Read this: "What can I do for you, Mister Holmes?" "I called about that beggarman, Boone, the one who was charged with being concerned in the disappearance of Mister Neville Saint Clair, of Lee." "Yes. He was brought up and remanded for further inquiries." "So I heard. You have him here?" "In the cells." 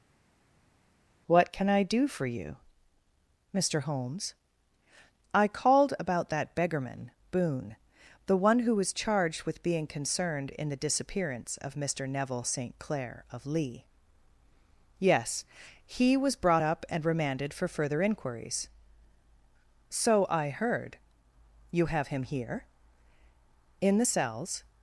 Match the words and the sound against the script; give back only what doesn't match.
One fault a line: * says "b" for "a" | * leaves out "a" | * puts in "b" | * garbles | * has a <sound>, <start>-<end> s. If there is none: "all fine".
all fine